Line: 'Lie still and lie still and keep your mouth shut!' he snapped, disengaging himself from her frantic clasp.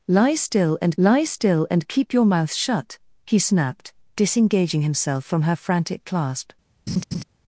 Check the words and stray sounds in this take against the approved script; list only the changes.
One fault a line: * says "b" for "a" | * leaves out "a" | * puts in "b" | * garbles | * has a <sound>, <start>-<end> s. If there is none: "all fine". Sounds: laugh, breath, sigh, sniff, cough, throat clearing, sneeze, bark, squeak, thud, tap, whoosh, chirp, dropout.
* has a laugh, 6.9-7.2 s